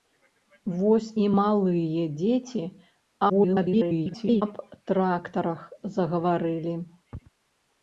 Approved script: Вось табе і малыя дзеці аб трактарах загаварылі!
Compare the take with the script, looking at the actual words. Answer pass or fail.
fail